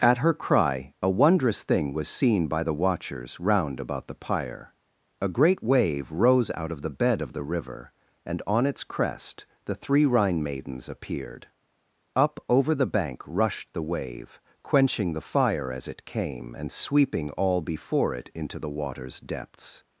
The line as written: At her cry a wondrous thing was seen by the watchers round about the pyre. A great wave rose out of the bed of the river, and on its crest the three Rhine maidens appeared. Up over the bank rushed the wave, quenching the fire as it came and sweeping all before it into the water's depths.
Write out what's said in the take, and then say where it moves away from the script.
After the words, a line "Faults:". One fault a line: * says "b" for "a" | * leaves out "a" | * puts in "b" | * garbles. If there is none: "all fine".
At her cry a wondrous thing was seen by the watchers round about the pyre. A great wave rose out of the bed of the river, and on its crest the three Rhine maidens appeared. Up over the bank rushed the wave, quenching the fire as it came and sweeping all before it into the water's depths.
Faults:
all fine